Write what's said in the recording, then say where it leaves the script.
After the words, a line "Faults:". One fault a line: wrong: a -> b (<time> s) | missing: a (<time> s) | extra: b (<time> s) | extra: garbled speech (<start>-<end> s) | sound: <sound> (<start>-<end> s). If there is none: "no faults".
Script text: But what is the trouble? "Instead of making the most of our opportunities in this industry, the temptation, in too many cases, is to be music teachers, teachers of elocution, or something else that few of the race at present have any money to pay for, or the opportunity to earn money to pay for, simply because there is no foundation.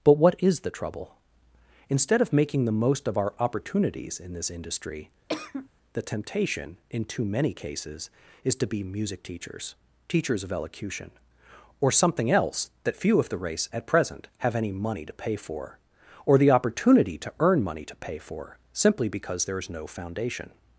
But what is the trouble? "Instead of making the most of our opportunities in this industry, the temptation, in too many cases, is to be music teachers, teachers of elocution, or something else that few of the race at present have any money to pay for, or the opportunity to earn money to pay for, simply because there is no foundation.
Faults:
sound: cough (5.3-5.7 s)